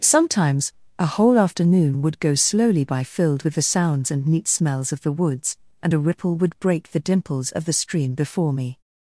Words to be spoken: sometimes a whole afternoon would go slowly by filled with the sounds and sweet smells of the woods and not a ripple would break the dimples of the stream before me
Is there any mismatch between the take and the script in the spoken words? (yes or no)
yes